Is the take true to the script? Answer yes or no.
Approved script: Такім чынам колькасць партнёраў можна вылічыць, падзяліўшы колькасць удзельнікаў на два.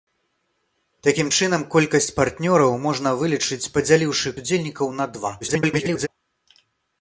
no